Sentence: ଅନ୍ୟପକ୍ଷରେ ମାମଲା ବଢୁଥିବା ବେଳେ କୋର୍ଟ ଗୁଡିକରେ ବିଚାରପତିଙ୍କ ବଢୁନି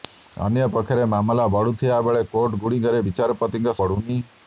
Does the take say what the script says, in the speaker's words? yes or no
yes